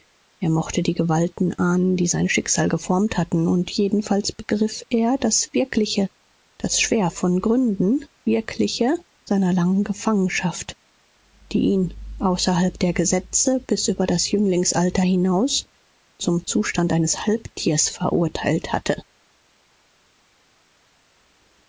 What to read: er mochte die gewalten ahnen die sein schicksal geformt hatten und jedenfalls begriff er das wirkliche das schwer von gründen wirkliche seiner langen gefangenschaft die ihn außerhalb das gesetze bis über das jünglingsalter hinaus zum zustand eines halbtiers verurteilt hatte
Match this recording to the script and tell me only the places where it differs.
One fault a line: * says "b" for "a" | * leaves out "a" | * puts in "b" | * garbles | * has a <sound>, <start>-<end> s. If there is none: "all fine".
* says "der" for "das"